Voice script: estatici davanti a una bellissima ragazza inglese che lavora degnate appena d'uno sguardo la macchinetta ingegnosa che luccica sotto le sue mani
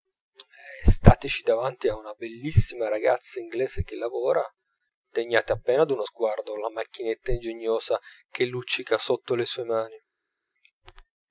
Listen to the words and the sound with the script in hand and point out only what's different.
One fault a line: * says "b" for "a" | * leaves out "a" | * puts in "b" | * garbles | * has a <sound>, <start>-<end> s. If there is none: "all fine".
all fine